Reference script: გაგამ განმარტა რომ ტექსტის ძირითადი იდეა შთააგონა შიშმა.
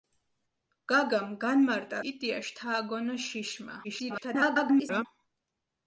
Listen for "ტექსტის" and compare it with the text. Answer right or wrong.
wrong